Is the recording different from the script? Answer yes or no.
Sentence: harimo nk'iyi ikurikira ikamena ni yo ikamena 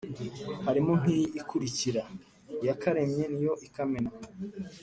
yes